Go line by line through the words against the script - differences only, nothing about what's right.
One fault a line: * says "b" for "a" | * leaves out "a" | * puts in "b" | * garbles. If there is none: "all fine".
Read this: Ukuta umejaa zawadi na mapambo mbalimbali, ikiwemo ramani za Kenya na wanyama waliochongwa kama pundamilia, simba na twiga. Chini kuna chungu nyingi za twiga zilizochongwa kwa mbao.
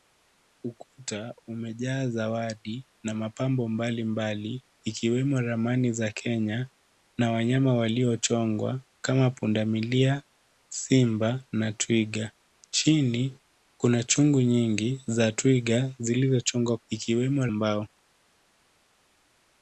* says "ikiwemo" for "kwa"